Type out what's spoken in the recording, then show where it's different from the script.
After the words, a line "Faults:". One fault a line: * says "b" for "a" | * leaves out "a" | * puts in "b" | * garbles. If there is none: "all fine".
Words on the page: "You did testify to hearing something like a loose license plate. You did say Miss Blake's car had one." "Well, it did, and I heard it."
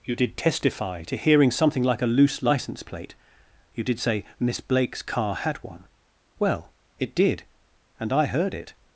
"You did testify to hearing something like a loose license plate. You did say Miss Blake's car had one." "Well, it did, and I heard it."
Faults:
all fine